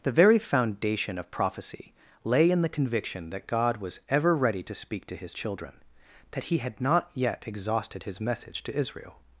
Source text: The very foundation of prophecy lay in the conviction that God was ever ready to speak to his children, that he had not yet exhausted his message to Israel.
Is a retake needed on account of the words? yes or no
no